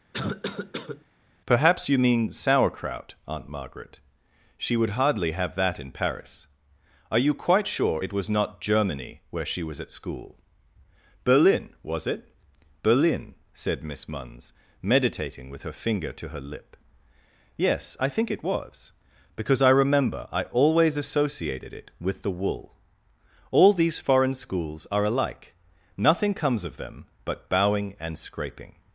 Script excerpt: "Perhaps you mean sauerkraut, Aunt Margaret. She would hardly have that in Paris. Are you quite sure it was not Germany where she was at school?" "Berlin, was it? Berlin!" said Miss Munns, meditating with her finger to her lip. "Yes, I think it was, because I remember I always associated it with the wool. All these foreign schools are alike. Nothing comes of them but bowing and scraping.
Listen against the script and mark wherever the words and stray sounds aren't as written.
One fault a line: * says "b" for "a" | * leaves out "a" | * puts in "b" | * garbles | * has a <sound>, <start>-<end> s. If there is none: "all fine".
* has a cough, 0.1-1.0 s